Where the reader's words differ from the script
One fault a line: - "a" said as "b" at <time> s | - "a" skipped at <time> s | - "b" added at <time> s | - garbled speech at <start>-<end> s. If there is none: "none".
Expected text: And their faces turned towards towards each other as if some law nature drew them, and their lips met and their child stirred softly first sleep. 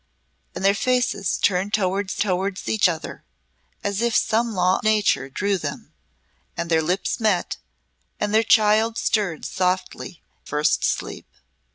none